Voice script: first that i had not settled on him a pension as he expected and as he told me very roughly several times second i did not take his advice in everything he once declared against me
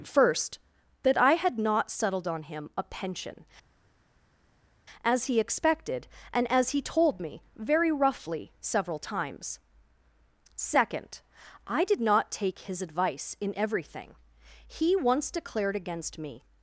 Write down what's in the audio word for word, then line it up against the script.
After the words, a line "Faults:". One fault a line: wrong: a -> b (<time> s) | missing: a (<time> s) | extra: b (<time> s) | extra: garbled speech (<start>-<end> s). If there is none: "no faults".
first that i had not settled on him a pension as he expected and as he told me very roughly several times second i did not take his advice in everything he once declared against me
Faults:
no faults